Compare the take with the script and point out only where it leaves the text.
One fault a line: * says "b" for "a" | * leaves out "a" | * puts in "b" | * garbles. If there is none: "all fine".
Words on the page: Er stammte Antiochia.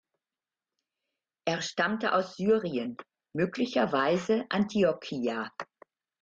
* puts in "aus Syrien möglicherweise"